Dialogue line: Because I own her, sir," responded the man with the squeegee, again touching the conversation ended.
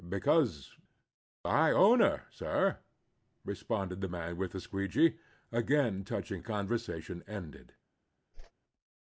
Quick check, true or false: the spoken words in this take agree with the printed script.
true